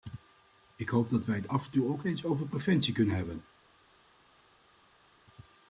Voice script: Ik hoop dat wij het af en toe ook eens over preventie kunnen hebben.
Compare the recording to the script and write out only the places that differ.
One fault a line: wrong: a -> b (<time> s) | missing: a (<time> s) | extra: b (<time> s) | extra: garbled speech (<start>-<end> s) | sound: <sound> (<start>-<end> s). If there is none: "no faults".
no faults